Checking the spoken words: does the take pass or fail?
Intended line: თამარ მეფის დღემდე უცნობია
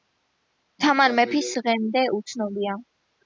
pass